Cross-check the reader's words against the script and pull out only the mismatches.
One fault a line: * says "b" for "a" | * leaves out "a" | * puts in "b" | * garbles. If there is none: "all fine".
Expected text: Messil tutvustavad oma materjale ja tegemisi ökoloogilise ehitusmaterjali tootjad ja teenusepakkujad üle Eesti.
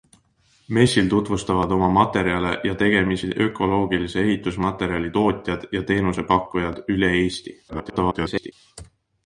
* garbles